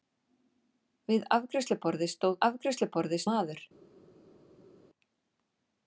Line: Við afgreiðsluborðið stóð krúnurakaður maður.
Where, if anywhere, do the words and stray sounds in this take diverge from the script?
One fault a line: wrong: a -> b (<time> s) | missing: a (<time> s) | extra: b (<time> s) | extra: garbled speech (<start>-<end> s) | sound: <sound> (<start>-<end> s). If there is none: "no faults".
wrong: krúnurakaður -> afgreiðsluborðið (2.5 s)